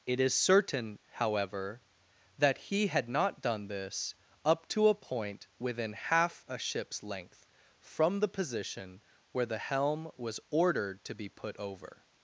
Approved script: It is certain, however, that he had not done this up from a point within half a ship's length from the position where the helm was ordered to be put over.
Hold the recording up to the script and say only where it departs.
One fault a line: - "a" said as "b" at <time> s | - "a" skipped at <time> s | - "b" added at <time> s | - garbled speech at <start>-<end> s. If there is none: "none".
- "from" said as "to" at 4.7 s